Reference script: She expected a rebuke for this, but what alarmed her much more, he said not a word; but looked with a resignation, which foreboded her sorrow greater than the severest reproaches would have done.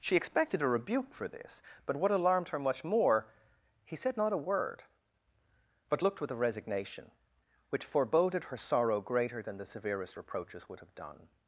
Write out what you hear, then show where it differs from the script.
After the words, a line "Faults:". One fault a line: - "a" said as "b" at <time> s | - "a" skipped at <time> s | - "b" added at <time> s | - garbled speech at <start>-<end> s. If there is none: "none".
She expected a rebuke for this, but what alarmed her much more, he said not a word; but looked with a resignation, which foreboded her sorrow greater than the severest reproaches would have done.
Faults:
none